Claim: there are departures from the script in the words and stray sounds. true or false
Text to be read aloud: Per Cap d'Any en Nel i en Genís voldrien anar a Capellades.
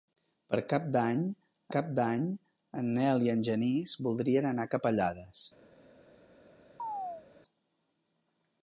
true